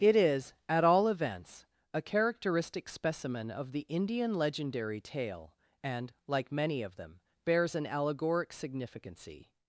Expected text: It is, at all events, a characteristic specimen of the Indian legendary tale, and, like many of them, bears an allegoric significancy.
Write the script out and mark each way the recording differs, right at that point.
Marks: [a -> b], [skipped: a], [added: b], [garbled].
It is, at all events, a characteristic specimen of the Indian legendary tale, and, like many of them, bears an allegoric significancy.